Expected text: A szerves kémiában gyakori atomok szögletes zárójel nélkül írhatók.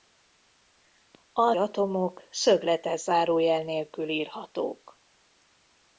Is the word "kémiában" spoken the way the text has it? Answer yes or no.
no